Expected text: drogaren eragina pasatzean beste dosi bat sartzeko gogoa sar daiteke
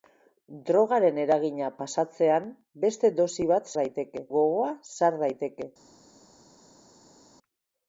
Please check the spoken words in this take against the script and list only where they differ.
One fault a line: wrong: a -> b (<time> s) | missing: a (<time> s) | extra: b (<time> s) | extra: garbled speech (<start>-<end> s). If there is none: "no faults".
wrong: sartzeko -> daiteke (3.8 s)